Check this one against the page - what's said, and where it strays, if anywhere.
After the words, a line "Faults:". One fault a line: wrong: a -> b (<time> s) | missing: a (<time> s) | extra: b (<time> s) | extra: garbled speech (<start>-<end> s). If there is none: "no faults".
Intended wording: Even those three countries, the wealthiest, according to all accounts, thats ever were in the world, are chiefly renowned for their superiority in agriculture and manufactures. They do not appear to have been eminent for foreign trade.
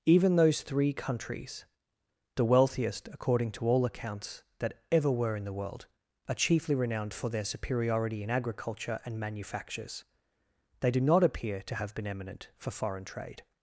Even those three countries, the wealthiest, according to all accounts, that ever were in the world, are chiefly renowned for their superiority in agriculture and manufactures. They do not appear to have been eminent for foreign trade.
Faults:
wrong: thats -> that (4.6 s)